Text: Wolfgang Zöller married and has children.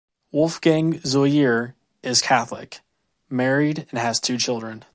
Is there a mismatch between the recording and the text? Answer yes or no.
yes